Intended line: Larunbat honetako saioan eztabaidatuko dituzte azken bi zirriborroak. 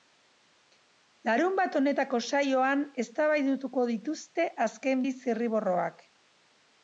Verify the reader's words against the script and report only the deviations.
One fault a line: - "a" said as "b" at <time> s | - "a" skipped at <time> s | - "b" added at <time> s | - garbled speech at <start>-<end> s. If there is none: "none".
none